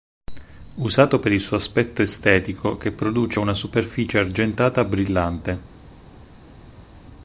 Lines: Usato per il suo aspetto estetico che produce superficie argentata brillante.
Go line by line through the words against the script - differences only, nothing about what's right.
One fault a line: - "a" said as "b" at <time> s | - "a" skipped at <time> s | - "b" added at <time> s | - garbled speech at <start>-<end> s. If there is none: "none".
- "una" added at 3.4 s